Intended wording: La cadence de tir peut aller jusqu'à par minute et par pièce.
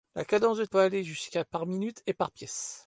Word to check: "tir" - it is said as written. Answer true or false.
false